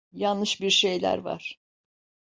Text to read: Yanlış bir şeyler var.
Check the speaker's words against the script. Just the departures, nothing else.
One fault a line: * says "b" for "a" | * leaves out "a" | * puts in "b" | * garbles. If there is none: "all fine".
all fine